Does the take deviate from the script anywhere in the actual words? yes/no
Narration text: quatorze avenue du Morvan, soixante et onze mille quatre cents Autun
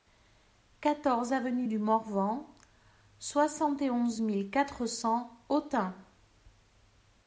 no